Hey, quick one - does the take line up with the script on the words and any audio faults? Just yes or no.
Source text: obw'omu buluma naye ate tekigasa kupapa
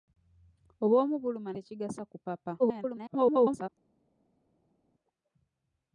no